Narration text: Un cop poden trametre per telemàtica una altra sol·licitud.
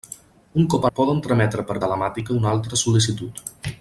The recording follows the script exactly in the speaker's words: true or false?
true